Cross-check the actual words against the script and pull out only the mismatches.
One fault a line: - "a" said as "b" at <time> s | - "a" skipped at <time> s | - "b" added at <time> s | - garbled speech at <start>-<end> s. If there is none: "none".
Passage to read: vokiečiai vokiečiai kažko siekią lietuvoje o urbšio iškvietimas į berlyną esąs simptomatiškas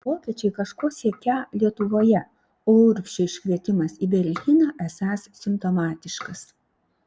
- "vokiečiai" skipped at 0.5 s